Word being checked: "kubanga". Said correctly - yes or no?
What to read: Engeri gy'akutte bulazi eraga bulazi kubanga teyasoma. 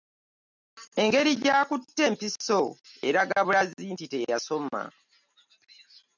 no